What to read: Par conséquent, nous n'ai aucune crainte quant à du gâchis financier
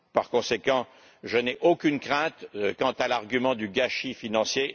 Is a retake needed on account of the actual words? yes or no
yes